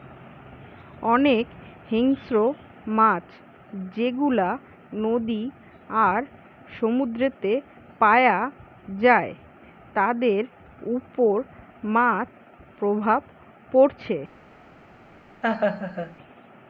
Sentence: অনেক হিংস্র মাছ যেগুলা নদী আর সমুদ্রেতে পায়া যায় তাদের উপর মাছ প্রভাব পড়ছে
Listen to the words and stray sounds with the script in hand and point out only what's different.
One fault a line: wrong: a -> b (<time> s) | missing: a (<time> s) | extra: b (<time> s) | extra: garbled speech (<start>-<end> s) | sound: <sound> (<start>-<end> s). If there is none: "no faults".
sound: laugh (15.4-16.2 s)